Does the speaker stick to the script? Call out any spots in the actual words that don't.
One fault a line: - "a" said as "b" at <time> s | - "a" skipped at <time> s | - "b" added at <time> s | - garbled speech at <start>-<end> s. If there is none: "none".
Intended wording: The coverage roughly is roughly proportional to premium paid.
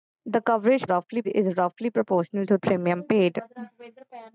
none